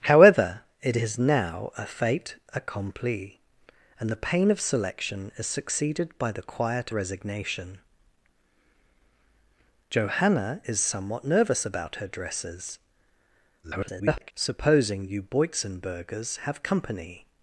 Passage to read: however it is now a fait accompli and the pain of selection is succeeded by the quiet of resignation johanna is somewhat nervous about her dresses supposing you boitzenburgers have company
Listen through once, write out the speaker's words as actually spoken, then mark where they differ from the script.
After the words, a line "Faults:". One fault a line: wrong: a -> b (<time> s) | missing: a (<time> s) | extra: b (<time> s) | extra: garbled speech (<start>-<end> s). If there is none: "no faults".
however it is now a fait accompli and the pain of selection is succeeded by the quiet resignation johanna is somewhat nervous about her dresses [garbled] supposing you boitzenburgers have company
Faults:
missing: of (6.9 s)
extra: garbled speech (13.6-14.3 s)